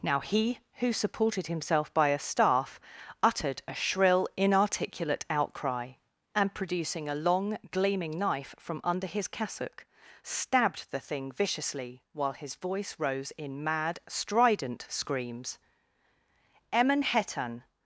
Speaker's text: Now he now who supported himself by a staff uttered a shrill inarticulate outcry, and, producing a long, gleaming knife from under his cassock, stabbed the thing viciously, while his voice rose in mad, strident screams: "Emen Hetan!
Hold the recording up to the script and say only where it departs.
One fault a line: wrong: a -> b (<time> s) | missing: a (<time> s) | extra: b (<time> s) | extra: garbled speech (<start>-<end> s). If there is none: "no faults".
missing: now (0.6 s)